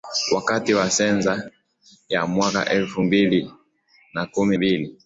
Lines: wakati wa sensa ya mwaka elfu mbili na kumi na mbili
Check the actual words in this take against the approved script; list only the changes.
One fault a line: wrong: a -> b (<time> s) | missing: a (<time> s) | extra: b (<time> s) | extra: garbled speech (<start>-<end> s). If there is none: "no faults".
missing: na (4.6 s)